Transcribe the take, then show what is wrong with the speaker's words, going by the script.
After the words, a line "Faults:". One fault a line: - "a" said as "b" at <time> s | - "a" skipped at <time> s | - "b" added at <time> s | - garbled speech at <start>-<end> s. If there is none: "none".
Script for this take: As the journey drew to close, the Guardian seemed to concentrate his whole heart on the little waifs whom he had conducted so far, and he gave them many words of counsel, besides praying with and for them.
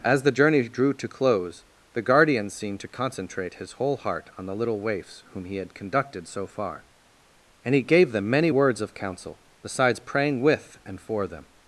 As the journey drew to close, the Guardian seemed to concentrate his whole heart on the little waifs whom he had conducted so far, and he gave them many words of counsel, besides praying with and for them.
Faults:
none